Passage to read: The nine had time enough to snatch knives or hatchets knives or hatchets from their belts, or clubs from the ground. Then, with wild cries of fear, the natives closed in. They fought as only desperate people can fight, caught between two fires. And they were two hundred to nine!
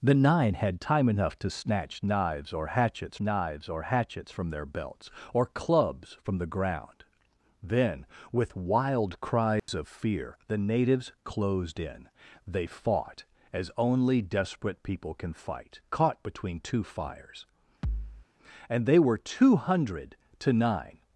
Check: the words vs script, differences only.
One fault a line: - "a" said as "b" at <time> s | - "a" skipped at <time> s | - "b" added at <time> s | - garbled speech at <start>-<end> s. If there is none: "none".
none